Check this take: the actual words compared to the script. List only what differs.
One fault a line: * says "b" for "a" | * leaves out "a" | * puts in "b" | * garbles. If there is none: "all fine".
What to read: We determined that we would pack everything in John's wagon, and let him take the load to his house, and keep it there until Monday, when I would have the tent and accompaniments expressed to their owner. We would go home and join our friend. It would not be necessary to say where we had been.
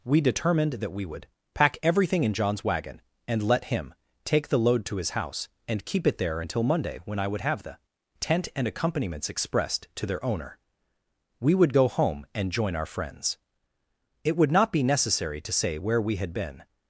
* says "friends" for "friend"